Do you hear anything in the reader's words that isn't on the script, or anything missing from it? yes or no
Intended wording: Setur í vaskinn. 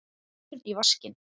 no